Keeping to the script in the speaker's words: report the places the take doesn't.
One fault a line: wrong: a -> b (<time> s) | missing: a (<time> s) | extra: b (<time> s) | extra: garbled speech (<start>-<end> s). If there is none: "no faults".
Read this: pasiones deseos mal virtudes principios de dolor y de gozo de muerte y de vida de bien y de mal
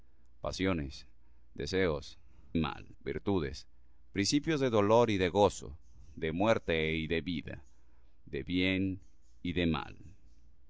no faults